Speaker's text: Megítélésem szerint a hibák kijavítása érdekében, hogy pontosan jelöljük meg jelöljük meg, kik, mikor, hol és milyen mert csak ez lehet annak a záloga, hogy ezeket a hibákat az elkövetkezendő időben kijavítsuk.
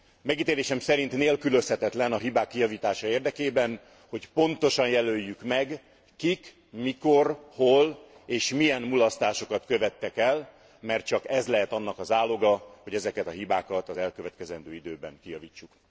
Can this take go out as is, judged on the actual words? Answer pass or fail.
fail